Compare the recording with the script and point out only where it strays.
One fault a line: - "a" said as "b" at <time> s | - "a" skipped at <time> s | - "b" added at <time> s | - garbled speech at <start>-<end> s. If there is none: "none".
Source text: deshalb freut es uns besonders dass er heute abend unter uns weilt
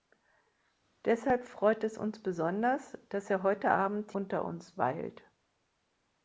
none